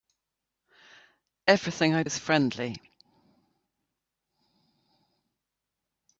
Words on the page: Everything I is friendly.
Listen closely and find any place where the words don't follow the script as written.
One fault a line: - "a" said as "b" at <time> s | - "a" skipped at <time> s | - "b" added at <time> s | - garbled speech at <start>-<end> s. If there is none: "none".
none